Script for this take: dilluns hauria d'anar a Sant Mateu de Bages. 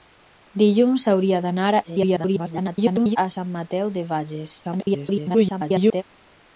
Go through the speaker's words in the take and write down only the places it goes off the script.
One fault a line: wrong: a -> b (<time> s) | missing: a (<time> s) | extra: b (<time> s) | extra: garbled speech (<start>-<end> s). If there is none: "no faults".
extra: garbled speech (1.8-3.2 s)
extra: garbled speech (4.6-6.0 s)